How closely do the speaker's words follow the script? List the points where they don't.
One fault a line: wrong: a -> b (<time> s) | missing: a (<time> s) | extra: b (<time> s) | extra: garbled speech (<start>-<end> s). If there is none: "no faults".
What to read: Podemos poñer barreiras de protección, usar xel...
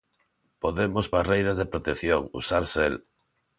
missing: poñer (1.1 s)